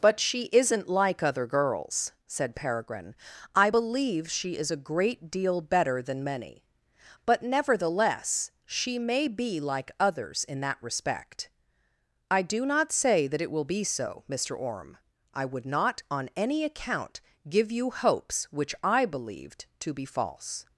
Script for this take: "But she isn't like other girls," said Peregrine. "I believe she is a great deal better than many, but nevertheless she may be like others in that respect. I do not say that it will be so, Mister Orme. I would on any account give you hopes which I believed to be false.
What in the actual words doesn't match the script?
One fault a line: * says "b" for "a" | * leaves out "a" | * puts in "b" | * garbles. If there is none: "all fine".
* puts in "not"